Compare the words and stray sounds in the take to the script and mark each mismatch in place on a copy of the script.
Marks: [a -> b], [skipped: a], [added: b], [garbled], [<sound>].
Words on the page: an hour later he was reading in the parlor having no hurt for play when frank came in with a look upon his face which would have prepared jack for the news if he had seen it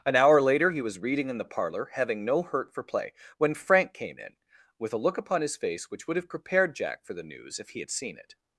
an hour later he was reading in the parlor having no hurt for play when frank came in with a look upon his face which would have prepared jack for the news if he had seen it